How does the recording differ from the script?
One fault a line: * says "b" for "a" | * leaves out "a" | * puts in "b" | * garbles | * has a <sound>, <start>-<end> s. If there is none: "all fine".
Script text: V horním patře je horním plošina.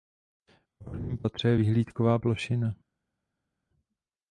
* says "vyhlídková" for "horním"